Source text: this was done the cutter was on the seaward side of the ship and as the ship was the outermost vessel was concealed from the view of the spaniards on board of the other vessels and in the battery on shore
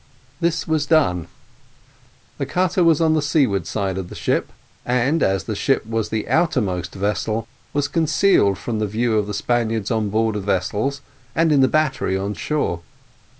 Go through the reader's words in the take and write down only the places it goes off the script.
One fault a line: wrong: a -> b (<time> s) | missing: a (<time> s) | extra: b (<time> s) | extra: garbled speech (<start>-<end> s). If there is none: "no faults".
missing: the other (10.4 s)